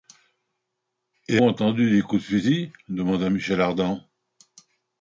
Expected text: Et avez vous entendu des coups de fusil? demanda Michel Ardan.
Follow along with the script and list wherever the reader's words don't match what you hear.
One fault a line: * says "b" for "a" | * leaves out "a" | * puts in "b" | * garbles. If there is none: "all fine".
* leaves out "avez vous"